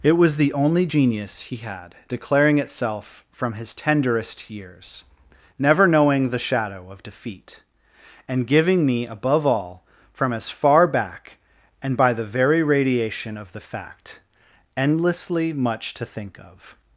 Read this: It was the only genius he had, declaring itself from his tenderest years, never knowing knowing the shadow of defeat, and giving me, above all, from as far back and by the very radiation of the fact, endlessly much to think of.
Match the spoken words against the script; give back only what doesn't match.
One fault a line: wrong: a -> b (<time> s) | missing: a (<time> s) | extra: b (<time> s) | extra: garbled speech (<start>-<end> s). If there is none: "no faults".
missing: knowing (6.3 s)